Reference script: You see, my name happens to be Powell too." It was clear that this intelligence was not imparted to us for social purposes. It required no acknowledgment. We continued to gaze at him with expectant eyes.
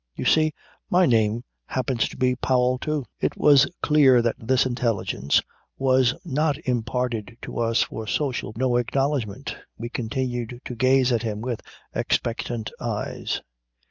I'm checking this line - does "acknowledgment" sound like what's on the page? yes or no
yes